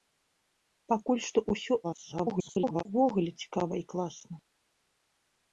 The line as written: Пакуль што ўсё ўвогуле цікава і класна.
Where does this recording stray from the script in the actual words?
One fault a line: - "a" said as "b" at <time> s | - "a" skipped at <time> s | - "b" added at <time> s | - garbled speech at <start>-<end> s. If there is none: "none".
- garbled speech at 1.8-2.8 s